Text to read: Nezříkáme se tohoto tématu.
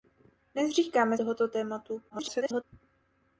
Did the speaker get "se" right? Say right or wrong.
wrong